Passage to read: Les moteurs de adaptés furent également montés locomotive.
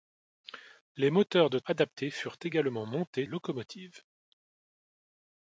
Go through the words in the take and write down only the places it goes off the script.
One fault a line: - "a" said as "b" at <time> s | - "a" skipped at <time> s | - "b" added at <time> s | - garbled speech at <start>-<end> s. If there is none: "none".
none